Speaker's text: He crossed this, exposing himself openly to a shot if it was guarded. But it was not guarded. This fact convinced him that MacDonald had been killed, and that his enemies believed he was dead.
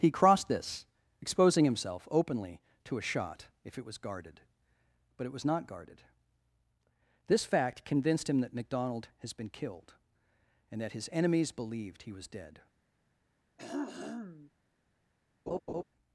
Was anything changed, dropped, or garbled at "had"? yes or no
yes